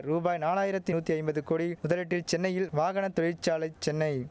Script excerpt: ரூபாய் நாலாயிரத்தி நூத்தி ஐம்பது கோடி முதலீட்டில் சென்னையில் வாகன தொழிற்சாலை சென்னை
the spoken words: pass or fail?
pass